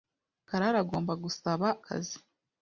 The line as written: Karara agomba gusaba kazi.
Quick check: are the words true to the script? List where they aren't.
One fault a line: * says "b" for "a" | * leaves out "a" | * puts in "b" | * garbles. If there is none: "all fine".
all fine